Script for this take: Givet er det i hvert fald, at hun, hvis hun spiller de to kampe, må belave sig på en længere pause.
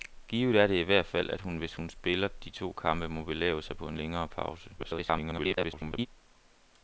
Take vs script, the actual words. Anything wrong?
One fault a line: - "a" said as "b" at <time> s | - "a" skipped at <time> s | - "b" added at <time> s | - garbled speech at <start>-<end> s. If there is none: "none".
- garbled speech at 4.8-6.1 s